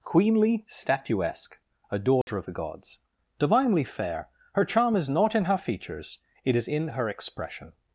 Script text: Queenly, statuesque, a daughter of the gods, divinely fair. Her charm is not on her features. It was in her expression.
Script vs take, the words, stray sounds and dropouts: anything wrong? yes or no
yes